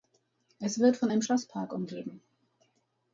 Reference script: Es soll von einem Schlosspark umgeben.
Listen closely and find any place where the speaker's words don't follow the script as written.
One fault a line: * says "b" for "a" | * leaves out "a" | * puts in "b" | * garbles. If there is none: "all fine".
* says "wird" for "soll"